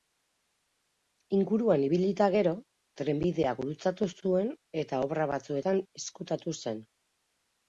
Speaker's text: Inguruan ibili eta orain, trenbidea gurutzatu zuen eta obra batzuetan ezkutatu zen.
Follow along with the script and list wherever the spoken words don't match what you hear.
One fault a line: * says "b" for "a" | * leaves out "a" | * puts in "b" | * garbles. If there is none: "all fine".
* says "gero" for "orain"